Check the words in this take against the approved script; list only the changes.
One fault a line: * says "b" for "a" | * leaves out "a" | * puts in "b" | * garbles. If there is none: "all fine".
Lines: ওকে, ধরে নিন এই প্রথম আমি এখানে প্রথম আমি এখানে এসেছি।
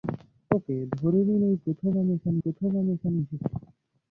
all fine